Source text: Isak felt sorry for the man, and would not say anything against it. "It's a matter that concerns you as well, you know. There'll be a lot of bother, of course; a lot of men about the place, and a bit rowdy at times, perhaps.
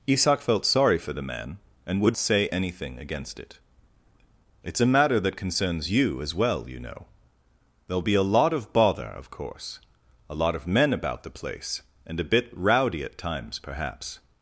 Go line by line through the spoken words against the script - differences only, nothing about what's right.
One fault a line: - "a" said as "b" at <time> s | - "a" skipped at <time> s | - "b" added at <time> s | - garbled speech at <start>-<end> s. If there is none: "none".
- "not" skipped at 2.2 s